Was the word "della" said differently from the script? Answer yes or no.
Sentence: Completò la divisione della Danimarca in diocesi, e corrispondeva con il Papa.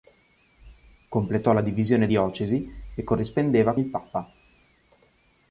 yes